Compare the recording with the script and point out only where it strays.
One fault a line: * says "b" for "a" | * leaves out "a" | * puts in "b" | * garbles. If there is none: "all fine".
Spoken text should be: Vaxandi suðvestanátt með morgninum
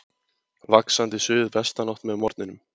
all fine